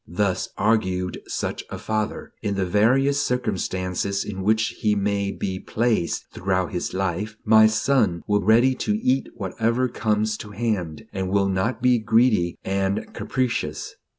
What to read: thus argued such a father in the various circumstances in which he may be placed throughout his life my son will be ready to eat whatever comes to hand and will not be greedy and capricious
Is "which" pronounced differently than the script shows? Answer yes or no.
no